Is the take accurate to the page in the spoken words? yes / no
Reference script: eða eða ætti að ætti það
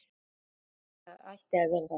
no